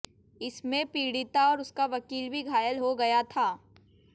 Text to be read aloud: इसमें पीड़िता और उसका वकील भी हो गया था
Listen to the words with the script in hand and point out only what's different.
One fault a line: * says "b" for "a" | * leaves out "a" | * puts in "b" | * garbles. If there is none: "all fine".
* puts in "घायल"